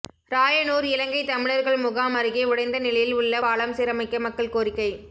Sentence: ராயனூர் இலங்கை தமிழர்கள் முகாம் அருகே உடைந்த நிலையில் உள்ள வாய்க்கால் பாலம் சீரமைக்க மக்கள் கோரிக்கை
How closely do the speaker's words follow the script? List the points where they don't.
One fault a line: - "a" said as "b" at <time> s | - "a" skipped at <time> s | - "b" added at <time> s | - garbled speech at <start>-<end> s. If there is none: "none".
- "வாய்க்கால்" skipped at 3.4 s